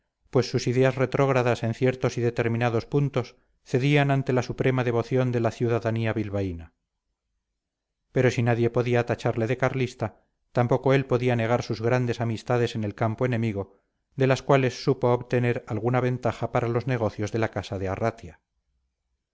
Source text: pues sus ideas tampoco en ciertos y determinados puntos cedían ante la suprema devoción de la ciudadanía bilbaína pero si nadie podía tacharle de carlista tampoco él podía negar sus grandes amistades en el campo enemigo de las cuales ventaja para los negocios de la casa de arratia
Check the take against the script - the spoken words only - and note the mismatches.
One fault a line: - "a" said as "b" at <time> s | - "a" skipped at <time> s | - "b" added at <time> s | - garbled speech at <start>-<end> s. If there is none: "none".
- "tampoco" said as "retrógradas" at 0.9 s
- "supo obtener alguna" added at 14.8 s